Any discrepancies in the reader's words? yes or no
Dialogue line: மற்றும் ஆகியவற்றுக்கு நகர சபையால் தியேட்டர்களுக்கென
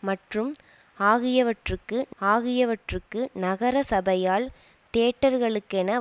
yes